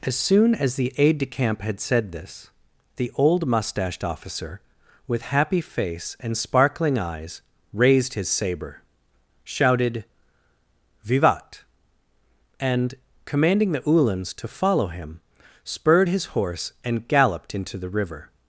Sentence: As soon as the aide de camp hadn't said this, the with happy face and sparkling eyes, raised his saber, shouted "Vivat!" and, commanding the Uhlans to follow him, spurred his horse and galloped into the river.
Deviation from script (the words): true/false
true